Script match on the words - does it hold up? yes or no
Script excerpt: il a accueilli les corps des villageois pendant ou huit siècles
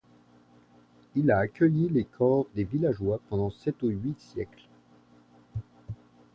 no